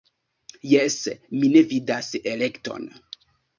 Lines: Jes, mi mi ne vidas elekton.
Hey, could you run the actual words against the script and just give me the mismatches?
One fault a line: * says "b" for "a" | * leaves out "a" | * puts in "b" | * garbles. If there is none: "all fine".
* leaves out "mi"